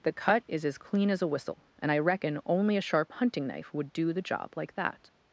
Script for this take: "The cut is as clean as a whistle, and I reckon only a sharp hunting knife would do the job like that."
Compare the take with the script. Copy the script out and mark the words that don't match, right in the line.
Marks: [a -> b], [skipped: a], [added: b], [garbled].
"The cut is as clean as a whistle, and I reckon only a sharp hunting knife would do the job like that."